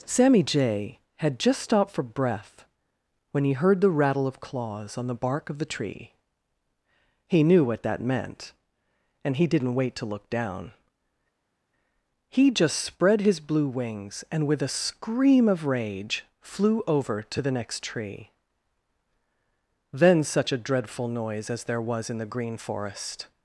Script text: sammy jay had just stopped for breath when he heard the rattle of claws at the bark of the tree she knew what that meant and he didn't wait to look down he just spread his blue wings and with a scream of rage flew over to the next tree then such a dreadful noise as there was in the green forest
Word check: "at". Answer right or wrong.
wrong